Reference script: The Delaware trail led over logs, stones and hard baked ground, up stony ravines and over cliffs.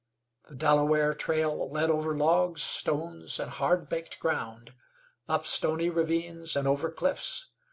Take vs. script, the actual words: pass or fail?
pass